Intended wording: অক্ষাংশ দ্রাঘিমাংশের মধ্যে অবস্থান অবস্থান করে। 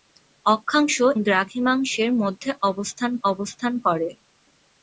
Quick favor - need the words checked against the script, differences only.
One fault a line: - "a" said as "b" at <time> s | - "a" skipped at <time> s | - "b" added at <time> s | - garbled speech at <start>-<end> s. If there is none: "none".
none